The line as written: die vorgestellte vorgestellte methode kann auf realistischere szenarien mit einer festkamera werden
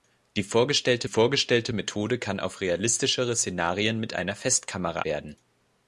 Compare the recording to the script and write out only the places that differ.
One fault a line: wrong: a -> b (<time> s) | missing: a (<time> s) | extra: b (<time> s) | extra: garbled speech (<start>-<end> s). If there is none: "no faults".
no faults